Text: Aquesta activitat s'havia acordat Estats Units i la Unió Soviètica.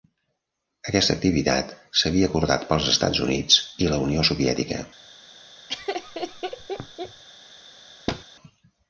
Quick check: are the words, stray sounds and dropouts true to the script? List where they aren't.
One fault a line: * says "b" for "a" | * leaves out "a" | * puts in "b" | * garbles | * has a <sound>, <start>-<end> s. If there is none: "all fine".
* puts in "pels"
* has a laugh, 5.7-7.2 s
* has a thud, 8.1-8.2 s